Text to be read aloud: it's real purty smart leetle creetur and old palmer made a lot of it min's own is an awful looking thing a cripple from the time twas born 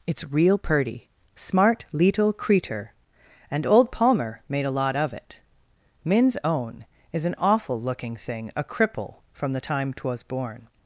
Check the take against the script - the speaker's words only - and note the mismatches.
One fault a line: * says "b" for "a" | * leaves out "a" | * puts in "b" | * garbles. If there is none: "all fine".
all fine